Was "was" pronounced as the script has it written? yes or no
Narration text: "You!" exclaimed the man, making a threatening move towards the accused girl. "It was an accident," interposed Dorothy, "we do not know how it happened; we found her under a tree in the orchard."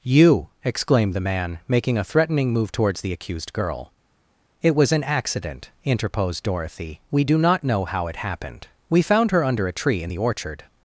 yes